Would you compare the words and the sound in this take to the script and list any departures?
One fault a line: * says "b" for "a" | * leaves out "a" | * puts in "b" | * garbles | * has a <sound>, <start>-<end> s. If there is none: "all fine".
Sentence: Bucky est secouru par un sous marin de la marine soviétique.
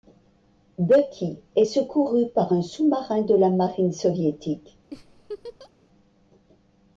* has a laugh, 4.9-5.7 s